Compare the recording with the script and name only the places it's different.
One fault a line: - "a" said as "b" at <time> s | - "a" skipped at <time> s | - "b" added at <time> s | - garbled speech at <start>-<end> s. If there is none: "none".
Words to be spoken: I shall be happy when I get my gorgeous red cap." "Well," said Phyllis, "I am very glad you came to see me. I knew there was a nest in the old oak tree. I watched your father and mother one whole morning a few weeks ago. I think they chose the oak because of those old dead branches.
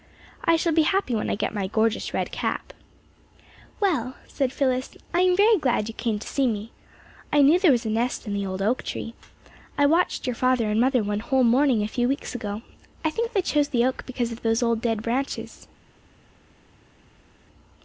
none